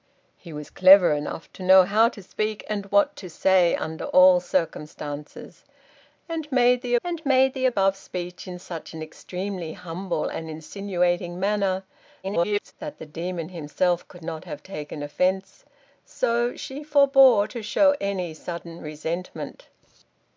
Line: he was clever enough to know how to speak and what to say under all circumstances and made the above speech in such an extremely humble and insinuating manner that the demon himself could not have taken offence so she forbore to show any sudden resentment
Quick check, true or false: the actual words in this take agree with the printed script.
false